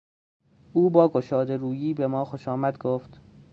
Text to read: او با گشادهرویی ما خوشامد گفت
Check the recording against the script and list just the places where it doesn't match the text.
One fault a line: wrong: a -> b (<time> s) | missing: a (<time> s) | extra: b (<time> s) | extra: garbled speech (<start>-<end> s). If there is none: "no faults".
extra: به (1.9 s)